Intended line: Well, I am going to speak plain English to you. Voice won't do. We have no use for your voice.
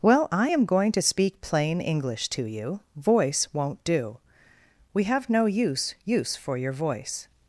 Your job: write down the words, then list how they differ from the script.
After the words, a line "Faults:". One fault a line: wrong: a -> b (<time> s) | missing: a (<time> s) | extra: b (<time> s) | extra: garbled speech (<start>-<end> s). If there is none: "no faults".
Well, I am going to speak plain English to you. Voice won't do. We have no use use for your voice.
Faults:
extra: use (6.1 s)